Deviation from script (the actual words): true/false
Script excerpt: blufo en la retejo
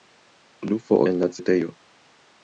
false